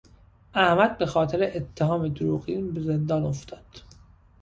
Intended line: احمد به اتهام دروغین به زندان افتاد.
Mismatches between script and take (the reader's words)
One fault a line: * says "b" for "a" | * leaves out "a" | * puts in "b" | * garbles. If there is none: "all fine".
* puts in "خاطر"